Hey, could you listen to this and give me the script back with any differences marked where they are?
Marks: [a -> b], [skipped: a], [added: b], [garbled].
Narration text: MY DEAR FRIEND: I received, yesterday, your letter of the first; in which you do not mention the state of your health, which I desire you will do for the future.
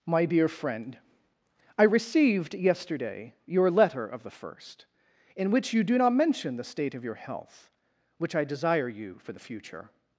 MY DEAR FRIEND: I received, yesterday, your letter of the first; in which you do not mention the state of your health, which I desire you [skipped: will do] for the future.